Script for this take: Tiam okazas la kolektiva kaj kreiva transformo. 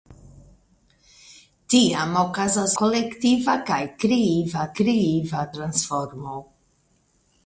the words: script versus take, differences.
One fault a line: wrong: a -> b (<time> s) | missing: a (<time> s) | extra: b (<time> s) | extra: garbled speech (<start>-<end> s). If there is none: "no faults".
missing: la (2.7 s)
extra: kreiva (4.8 s)